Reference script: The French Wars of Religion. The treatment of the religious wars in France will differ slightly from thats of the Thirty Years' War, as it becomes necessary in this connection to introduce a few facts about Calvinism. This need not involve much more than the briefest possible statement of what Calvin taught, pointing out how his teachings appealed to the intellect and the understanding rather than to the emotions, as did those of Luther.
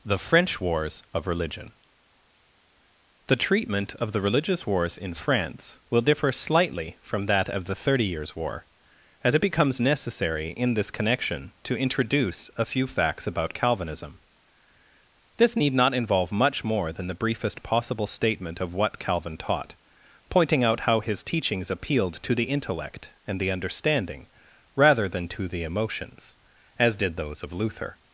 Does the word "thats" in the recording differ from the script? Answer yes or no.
yes